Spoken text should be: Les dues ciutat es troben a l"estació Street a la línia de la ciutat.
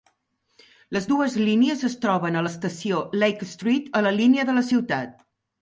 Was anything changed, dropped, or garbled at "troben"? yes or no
no